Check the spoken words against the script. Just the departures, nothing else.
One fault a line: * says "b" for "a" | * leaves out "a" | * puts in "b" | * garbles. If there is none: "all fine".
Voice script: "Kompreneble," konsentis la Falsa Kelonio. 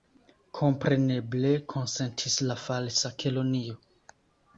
all fine